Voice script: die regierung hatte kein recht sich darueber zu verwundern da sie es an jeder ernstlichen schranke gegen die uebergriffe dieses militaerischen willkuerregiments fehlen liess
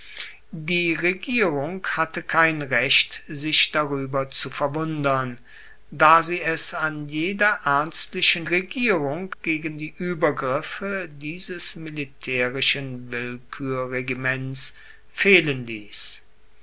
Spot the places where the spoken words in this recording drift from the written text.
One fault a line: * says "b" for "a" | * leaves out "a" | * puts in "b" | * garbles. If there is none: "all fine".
* says "regierung" for "schranke"